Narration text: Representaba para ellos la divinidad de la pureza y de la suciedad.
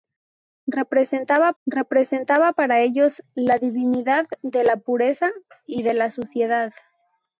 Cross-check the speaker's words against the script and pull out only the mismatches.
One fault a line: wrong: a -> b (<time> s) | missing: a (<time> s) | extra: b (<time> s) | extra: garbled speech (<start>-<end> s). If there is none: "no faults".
extra: representaba (1.6 s)